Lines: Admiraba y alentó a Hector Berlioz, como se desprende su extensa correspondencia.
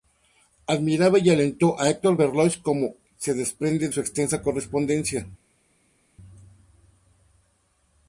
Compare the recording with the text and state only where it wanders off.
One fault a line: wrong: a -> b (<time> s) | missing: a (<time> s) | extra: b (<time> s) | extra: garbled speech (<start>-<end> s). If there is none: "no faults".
no faults